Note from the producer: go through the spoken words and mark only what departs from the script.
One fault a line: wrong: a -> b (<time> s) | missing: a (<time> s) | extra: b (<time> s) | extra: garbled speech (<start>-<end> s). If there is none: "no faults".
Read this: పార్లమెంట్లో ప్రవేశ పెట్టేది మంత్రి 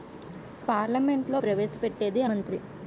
no faults